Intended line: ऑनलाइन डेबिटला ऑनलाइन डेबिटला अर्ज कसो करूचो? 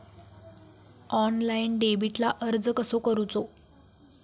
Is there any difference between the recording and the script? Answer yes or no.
yes